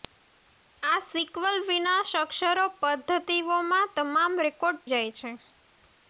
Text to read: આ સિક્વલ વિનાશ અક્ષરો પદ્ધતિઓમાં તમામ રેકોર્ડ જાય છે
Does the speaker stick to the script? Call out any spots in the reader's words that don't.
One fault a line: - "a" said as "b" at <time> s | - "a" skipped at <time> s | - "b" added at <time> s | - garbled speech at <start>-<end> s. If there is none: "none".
none